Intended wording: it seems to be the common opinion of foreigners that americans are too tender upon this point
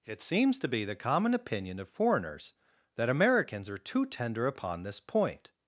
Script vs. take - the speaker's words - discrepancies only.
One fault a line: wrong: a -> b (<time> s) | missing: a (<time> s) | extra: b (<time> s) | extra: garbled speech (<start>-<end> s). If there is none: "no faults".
no faults